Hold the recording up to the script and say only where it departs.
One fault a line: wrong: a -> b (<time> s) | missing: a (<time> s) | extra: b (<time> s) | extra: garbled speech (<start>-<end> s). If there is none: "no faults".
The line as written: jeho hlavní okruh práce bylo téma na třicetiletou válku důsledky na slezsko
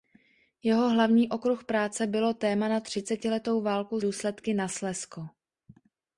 no faults